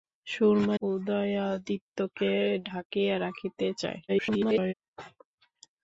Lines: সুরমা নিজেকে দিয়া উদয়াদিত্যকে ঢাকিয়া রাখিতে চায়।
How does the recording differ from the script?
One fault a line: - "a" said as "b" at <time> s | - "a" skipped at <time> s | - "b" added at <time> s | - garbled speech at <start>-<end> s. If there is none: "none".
- "নিজেকে দিয়া" skipped at 0.8 s
- garbled speech at 4.1-4.7 s